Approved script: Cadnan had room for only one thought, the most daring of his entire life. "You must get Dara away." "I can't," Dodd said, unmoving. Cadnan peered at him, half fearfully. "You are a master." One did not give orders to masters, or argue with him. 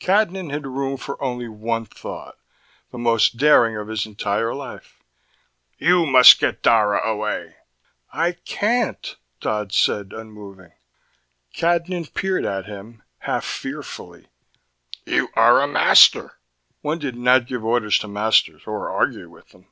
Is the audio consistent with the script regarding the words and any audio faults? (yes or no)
no